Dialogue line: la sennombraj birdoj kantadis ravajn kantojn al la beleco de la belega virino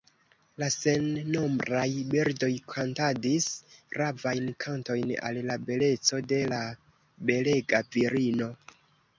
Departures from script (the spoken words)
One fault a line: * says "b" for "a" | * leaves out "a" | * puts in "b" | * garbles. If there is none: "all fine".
all fine